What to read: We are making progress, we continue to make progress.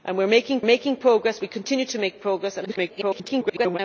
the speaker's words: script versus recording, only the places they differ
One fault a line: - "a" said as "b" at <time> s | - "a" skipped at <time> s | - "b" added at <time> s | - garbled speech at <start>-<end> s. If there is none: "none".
- "making" added at 0.6 s
- garbled speech at 2.6-3.8 s